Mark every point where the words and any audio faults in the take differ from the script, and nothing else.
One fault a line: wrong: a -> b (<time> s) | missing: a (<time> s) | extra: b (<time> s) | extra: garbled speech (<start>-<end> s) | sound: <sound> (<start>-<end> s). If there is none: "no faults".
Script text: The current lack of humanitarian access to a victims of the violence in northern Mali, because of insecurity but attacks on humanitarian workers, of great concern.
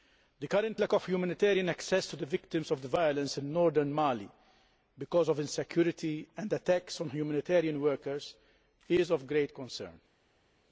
wrong: a -> the (2.1 s)
wrong: but -> and (6.4 s)
extra: is (8.9 s)